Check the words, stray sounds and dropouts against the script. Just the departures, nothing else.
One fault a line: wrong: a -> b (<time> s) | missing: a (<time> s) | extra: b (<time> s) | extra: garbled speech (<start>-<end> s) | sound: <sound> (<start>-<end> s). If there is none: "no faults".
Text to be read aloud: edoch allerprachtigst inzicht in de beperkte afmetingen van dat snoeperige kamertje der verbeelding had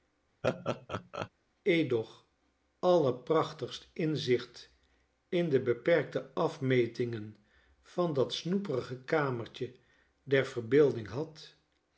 sound: laugh (0.4-1.3 s)